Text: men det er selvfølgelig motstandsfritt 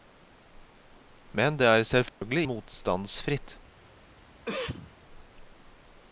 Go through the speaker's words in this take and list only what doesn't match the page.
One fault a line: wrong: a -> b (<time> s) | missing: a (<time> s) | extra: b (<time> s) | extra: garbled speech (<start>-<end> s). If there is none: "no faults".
no faults